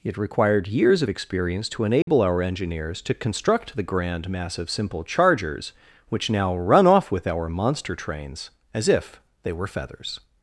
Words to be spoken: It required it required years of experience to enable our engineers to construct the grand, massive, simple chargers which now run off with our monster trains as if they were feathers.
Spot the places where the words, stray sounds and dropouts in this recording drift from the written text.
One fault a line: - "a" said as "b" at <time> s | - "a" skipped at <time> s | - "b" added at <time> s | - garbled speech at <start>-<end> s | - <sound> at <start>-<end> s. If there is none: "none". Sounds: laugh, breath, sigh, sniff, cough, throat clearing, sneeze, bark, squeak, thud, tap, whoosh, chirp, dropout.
- "it required" skipped at 0.7 s
- dropout at 2.0-2.1 s